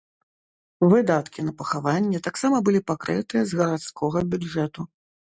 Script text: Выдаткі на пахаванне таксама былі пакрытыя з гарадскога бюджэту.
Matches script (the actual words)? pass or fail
pass